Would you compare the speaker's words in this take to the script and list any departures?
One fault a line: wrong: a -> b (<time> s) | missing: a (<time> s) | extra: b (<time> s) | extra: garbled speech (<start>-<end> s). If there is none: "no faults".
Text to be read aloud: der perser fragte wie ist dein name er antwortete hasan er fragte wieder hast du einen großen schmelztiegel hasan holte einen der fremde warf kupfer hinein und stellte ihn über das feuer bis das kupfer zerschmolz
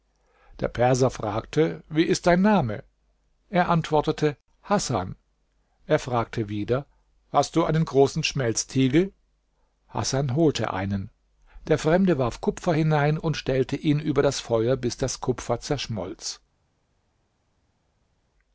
no faults